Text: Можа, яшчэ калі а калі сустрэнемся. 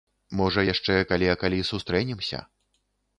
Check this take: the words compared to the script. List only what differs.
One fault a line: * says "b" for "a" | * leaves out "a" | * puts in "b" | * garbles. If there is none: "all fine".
all fine